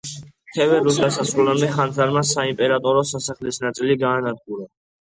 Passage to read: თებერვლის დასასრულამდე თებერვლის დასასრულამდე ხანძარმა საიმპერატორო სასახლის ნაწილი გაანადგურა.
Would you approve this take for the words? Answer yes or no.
no